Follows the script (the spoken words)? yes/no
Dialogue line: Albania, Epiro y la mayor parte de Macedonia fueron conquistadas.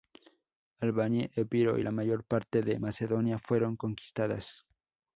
yes